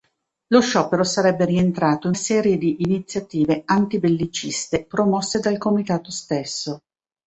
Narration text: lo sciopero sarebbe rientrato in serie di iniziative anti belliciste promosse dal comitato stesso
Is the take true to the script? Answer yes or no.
yes